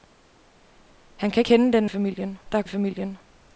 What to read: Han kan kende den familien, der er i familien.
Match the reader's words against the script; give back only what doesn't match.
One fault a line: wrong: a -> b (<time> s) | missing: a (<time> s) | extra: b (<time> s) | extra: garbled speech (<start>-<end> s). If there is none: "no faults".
no faults